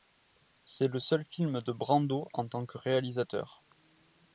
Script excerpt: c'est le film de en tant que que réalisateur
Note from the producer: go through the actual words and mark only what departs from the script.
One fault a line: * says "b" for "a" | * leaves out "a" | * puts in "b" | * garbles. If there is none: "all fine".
* puts in "seul"
* puts in "brando"
* leaves out "que"